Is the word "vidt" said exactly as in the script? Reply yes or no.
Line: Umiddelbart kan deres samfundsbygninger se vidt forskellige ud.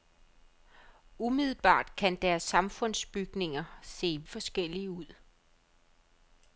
no